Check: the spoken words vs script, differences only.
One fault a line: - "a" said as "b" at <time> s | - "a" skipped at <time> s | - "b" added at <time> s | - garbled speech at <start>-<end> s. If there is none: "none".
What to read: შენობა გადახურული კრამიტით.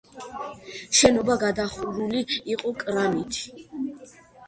- "იყო" added at 2.6 s